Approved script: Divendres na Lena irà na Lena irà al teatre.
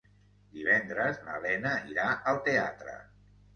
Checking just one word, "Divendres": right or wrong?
right